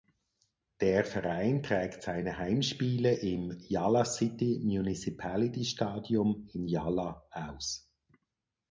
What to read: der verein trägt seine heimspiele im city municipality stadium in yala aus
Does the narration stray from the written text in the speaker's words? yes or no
yes